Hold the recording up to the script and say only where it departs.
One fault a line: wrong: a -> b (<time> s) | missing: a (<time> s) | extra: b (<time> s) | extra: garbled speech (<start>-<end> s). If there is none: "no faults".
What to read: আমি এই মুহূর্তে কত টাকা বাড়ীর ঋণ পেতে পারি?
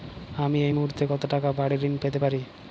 no faults